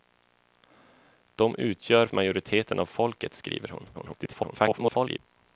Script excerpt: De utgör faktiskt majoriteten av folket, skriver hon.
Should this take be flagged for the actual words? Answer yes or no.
yes